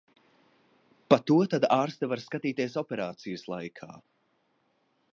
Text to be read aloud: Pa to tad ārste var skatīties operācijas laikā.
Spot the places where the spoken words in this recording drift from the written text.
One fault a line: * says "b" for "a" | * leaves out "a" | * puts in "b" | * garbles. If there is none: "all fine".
all fine